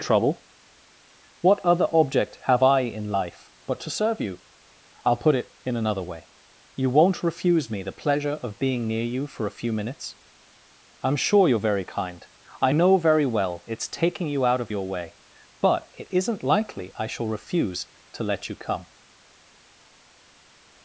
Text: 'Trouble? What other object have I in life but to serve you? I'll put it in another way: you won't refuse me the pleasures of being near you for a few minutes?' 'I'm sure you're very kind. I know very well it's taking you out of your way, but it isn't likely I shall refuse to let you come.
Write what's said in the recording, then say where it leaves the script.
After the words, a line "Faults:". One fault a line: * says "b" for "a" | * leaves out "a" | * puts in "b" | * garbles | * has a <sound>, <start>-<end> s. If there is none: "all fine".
'Trouble? What other object have I in life but to serve you? I'll put it in another way: you won't refuse me the pleasure of being near you for a few minutes?' 'I'm sure you're very kind. I know very well it's taking you out of your way, but it isn't likely I shall refuse to let you come.
Faults:
* says "pleasure" for "pleasures"